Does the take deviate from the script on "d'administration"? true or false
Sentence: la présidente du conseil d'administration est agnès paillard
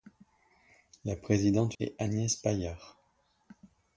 true